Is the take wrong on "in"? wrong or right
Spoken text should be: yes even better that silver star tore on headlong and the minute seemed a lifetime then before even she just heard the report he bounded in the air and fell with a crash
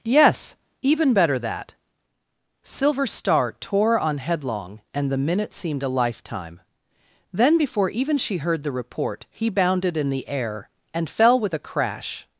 right